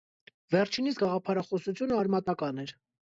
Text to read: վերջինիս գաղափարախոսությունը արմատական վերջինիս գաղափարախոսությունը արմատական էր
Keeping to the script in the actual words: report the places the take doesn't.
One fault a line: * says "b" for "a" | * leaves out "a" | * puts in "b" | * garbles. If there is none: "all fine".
* leaves out "վերջինիս գաղափարախոսությունը արմատական"